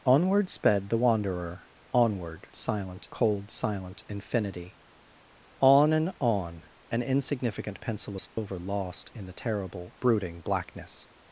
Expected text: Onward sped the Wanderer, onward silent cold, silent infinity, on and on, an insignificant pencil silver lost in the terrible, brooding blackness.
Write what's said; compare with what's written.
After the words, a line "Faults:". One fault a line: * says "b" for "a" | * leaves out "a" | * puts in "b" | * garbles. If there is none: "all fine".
Onward sped the Wanderer, onward silent cold, silent infinity, on and on, an insignificant pencil silver lost in the terrible, brooding blackness.
Faults:
all fine